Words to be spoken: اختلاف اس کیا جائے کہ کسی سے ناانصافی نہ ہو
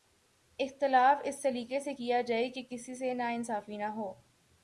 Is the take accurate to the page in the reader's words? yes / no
no